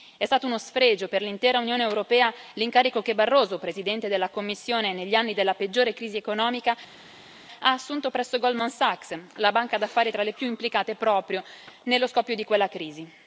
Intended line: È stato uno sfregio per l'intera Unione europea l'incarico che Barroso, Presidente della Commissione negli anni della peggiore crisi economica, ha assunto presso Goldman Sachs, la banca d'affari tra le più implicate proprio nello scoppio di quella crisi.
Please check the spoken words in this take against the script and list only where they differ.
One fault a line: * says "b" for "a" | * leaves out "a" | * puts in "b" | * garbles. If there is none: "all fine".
all fine